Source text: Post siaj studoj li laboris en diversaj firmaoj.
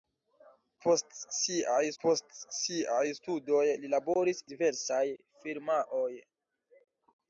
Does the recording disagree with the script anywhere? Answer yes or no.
yes